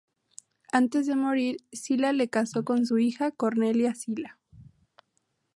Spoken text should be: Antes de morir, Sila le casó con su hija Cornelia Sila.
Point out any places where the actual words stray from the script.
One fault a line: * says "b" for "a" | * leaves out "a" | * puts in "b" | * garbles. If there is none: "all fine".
all fine